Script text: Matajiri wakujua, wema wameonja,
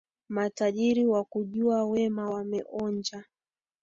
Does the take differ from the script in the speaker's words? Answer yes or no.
no